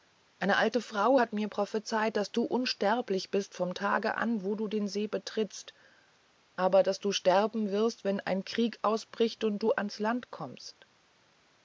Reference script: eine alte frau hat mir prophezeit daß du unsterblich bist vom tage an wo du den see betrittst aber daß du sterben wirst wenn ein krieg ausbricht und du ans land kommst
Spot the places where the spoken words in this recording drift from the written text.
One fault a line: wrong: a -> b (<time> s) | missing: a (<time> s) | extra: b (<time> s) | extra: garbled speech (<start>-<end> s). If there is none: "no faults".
no faults